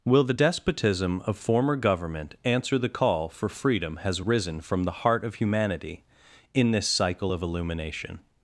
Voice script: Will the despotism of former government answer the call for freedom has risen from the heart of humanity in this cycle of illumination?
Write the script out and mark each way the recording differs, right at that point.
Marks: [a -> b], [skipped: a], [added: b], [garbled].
Will the despotism of former government answer the call for freedom has risen from the heart of humanity in this cycle of illumination?